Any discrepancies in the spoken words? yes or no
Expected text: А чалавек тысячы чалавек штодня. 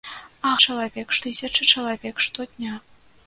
no